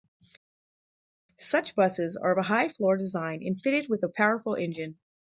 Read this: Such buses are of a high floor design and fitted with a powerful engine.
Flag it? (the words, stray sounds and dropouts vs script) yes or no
no